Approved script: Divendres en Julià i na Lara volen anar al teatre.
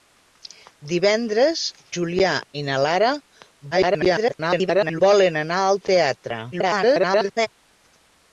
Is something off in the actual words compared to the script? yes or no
yes